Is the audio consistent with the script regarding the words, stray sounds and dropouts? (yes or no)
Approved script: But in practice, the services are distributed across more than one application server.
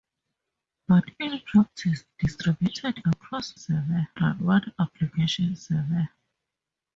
no